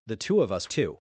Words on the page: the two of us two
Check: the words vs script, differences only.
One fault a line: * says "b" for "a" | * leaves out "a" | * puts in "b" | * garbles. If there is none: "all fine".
all fine